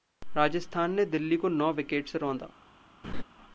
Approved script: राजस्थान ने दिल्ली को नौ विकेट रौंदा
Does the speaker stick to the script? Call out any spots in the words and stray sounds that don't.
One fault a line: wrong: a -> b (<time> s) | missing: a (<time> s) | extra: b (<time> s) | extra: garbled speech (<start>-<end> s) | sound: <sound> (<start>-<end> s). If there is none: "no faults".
extra: से (2.1 s)
sound: laugh (3.0-3.2 s)